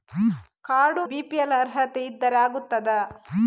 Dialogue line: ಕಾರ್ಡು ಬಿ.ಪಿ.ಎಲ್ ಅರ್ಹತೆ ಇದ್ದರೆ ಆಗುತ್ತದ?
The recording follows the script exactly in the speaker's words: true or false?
true